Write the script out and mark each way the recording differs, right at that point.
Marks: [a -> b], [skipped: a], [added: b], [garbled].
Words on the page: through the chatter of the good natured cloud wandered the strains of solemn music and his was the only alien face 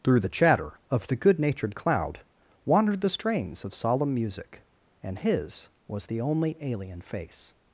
through the chatter of the good natured cloud wandered the strains of solemn music and his was the only alien face